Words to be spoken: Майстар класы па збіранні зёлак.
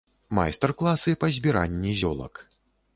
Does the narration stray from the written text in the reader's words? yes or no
no